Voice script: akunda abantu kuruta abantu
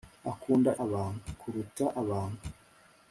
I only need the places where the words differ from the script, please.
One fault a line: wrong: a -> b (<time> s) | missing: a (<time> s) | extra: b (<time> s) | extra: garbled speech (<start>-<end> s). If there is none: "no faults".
no faults